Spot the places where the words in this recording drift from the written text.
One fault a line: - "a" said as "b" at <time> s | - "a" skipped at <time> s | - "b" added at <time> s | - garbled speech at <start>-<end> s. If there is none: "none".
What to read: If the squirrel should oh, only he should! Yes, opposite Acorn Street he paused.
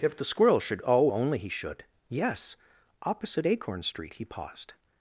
none